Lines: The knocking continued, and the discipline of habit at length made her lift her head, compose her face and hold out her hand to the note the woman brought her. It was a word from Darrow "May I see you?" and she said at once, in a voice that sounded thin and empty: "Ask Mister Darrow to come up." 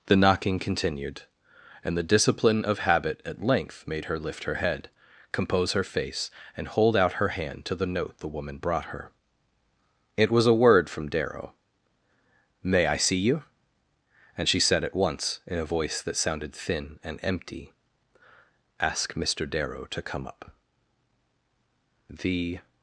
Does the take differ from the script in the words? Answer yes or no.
yes